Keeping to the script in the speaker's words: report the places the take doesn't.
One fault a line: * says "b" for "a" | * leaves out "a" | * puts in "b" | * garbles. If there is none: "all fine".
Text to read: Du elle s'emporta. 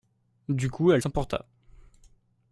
* puts in "coup"